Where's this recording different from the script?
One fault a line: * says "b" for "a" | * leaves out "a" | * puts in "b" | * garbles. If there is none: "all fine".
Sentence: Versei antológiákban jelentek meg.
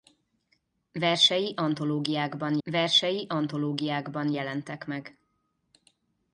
* puts in "versei antológiákban"